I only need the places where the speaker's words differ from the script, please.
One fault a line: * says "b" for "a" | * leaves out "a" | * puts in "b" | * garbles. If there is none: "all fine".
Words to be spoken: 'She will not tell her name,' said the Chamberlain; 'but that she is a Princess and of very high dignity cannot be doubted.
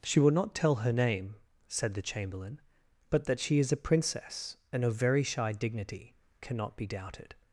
* says "shy" for "high"